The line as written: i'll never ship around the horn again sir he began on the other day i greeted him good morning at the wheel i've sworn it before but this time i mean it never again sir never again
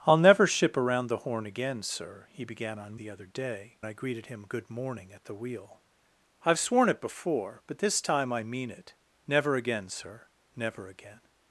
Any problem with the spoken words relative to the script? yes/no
no